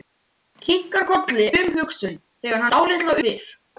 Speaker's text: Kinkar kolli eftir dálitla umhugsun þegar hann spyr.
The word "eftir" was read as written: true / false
false